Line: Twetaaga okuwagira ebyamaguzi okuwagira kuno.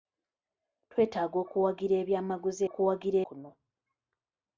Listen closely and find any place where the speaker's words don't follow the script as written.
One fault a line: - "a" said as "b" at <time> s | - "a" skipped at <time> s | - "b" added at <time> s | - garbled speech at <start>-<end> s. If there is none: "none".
none